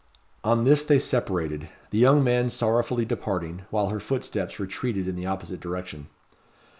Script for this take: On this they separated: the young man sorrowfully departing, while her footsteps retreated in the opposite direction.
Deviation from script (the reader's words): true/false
false